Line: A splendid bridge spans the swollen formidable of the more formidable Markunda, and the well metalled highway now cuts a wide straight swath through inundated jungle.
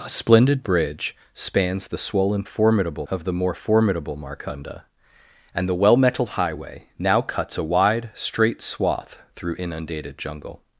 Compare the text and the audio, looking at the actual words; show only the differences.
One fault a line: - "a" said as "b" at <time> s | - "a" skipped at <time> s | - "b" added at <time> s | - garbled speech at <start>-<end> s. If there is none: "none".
none